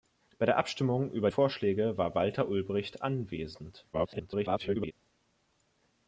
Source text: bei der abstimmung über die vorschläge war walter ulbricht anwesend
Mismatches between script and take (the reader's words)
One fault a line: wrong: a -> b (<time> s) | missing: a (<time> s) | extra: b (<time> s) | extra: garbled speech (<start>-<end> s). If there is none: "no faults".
missing: die (1.3 s)
extra: garbled speech (3.9-4.9 s)